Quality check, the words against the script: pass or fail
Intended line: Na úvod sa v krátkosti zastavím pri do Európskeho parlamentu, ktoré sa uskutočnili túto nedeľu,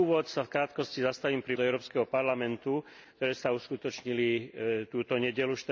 pass